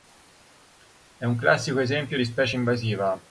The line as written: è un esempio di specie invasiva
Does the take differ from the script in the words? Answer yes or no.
yes